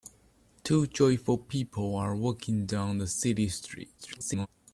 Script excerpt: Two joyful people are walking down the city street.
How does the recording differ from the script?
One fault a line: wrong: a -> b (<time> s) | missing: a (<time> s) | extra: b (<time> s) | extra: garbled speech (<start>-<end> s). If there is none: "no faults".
extra: garbled speech (4.0-4.5 s)